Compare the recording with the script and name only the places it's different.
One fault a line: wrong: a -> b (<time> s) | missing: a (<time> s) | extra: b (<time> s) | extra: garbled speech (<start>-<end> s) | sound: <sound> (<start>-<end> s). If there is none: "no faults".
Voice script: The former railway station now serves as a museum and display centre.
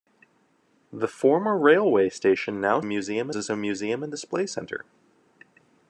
wrong: serves -> museum (2.8 s)